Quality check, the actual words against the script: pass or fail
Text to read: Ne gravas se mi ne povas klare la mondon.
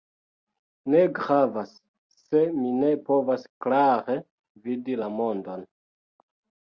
fail